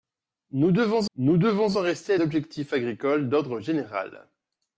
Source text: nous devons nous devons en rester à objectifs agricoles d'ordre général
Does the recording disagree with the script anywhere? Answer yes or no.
no